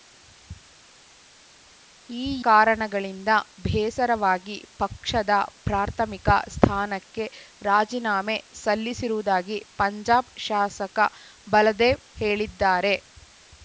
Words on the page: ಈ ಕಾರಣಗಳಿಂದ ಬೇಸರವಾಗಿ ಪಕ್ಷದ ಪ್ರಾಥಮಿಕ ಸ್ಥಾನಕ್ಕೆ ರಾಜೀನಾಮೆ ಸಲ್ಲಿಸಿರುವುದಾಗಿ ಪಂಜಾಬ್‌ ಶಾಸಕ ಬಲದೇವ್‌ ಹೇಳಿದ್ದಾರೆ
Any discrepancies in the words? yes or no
no